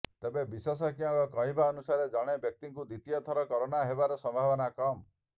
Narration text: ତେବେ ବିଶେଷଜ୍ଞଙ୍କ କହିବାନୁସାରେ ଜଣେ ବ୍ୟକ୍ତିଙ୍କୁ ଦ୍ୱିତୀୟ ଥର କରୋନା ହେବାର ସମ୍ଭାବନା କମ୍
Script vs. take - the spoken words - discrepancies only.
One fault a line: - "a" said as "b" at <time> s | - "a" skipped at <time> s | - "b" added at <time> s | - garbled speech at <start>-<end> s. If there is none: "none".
none